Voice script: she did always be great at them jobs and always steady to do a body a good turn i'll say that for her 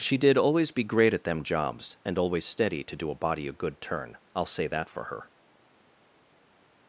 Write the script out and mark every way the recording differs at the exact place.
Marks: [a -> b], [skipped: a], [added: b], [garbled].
she did always be great at them jobs and always steady to do a body a good turn i'll say that for her